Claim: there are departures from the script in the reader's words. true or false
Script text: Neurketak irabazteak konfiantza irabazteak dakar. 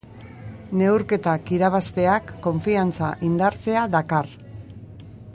true